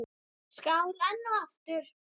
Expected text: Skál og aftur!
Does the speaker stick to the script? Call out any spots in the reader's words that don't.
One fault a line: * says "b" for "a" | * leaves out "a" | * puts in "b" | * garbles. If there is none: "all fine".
* puts in "enn"